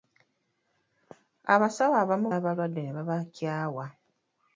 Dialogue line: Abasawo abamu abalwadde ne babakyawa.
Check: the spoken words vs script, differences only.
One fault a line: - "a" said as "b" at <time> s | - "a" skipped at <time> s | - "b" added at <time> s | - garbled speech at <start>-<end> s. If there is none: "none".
none